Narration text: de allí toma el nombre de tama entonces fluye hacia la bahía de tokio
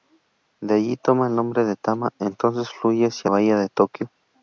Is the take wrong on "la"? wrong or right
wrong